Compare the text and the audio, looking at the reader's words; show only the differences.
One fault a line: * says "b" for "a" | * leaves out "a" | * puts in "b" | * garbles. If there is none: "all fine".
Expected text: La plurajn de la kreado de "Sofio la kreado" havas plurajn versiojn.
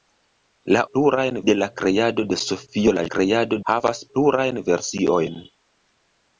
all fine